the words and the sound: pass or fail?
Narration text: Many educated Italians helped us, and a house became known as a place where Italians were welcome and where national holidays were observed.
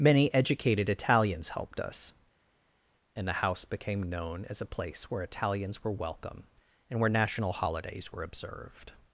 fail